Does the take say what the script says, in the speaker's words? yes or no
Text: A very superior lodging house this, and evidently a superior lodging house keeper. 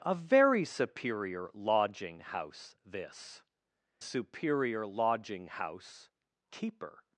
no